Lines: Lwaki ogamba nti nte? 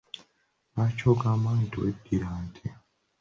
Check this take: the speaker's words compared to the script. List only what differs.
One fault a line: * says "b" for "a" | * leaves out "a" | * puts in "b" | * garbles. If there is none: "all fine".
* puts in "weddira"